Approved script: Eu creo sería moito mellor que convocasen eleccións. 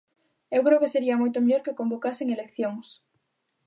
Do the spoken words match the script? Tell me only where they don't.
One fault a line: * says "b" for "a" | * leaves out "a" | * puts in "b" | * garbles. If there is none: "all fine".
* puts in "que"